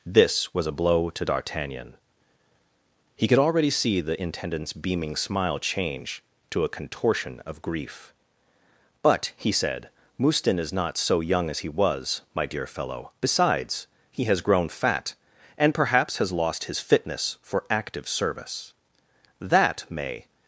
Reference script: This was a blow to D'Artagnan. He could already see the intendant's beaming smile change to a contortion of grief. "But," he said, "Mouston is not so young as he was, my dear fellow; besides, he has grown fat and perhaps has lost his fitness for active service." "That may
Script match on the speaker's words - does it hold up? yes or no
yes